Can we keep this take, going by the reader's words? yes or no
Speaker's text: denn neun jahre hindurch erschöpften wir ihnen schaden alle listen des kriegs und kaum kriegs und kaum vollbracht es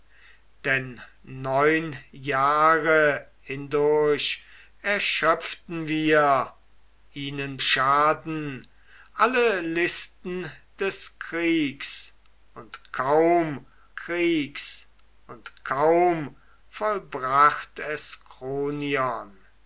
yes